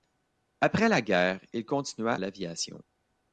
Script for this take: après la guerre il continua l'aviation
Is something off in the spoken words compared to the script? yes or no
no